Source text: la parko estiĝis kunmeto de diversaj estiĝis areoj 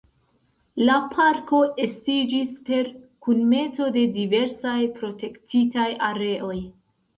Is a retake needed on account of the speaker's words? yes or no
yes